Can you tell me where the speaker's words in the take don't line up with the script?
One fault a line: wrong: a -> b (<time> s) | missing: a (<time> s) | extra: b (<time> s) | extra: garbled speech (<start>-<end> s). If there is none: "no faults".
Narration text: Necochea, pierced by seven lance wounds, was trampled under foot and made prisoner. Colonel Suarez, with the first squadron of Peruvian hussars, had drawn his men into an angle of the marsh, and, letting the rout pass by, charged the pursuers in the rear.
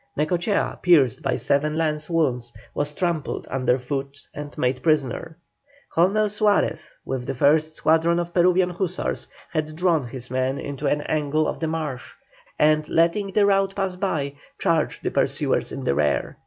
no faults